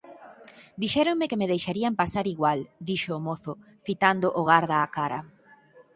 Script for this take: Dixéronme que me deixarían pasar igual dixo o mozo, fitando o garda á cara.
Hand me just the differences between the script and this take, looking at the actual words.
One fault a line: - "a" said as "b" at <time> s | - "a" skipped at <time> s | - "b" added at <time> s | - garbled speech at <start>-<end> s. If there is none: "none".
none